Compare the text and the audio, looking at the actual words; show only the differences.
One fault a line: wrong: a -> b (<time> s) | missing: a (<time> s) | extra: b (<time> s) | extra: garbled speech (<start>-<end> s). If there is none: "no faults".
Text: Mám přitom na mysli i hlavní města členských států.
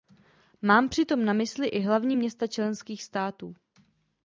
no faults